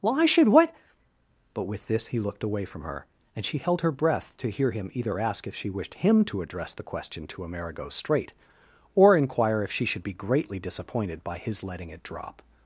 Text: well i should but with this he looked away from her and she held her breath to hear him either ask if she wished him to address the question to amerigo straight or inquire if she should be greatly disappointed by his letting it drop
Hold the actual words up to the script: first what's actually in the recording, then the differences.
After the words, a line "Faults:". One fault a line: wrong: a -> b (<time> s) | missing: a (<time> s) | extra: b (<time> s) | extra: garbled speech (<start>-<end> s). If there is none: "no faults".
well i should what but with this he looked away from her and she held her breath to hear him either ask if she wished him to address the question to amerigo straight or inquire if she should be greatly disappointed by his letting it drop
Faults:
extra: what (0.5 s)